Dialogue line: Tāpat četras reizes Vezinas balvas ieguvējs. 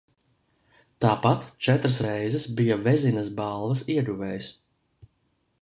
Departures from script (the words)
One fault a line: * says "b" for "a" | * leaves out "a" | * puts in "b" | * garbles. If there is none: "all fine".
* puts in "bija"